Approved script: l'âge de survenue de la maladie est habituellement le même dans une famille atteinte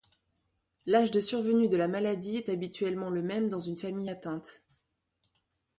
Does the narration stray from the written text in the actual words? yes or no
no